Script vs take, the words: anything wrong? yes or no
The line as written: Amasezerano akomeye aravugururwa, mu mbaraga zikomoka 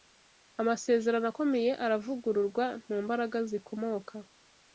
no